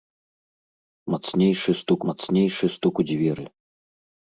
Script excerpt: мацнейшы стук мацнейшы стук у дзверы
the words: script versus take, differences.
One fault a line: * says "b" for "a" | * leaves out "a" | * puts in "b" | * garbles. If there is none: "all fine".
all fine